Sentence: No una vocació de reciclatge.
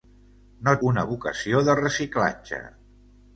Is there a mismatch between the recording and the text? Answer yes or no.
no